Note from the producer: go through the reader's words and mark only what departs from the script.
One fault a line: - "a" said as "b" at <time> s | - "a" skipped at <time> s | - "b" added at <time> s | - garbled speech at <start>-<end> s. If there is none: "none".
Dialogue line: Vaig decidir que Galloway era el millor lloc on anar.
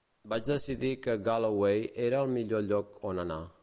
none